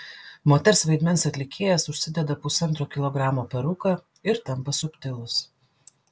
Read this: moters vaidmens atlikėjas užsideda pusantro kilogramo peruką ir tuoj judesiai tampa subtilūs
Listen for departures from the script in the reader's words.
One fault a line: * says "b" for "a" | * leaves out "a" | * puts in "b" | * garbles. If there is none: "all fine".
* leaves out "tuoj judesiai"